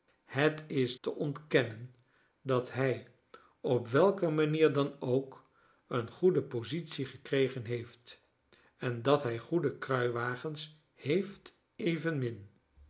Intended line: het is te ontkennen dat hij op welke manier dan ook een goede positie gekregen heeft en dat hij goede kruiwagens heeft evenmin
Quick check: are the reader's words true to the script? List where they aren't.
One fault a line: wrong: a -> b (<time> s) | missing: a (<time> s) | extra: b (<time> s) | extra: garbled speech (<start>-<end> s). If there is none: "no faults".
no faults